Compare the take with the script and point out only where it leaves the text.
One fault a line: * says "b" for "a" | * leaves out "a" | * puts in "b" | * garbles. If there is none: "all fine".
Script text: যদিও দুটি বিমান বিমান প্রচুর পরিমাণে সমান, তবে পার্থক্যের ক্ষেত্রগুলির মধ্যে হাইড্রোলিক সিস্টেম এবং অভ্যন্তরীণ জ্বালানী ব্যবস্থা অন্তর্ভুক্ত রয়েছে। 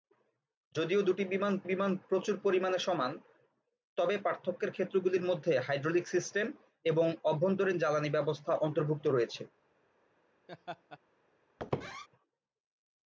all fine